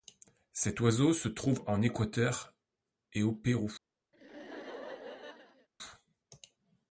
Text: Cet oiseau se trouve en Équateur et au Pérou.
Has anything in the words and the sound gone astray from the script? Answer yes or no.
yes